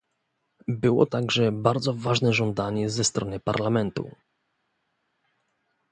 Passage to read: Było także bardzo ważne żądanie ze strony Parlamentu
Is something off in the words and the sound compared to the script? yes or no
no